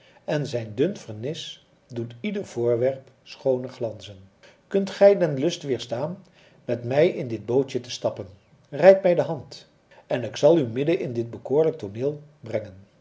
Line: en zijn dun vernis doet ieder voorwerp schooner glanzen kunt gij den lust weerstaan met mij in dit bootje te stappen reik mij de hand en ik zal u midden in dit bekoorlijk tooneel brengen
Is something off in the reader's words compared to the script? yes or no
no